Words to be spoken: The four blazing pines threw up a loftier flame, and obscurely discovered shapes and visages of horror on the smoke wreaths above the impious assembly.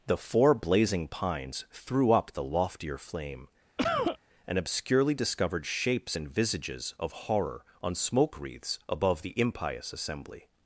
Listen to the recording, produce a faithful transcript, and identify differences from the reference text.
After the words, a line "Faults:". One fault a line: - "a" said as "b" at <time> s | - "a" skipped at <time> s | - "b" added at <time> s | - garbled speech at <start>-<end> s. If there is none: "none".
The four blazing pines threw up the loftier flame, and obscurely discovered shapes and visages of horror on smoke wreaths above the impious assembly.
Faults:
- "a" said as "the" at 2.3 s
- "the" skipped at 7.9 s